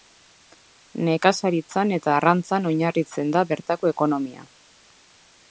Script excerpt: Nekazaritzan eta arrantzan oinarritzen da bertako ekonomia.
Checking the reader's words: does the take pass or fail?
pass